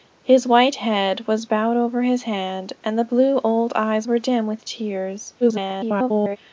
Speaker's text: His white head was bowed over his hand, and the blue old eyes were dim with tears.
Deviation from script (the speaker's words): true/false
true